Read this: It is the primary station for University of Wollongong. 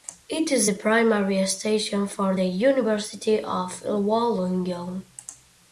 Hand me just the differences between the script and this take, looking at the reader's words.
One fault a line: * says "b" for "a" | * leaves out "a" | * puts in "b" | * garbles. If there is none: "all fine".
* puts in "the"